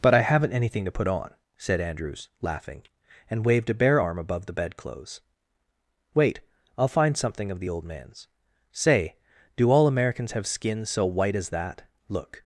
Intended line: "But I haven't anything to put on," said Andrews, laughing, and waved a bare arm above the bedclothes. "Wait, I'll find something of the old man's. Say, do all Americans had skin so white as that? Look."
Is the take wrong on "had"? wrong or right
wrong